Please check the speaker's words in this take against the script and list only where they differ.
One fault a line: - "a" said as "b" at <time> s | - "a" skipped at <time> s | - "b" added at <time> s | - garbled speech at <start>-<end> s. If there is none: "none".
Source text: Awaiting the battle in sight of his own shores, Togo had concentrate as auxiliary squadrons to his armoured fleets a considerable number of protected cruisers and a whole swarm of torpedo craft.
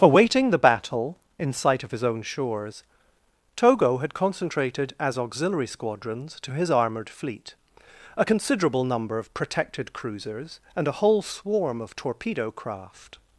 - "concentrate" said as "concentrated" at 4.2 s
- "fleets" said as "fleet" at 7.1 s